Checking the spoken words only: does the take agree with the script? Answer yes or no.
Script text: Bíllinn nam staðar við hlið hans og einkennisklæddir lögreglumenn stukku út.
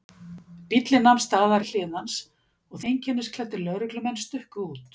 yes